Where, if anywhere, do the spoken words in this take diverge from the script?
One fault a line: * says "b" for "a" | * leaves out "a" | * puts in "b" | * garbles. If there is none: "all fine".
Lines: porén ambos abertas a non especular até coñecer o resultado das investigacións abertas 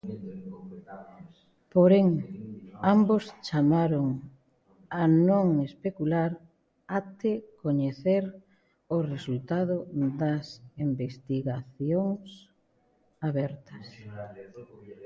* says "chamaron" for "abertas"